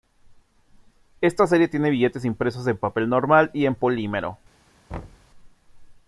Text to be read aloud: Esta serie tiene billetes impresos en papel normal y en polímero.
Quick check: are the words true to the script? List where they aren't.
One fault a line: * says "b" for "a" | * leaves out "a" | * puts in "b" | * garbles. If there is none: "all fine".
all fine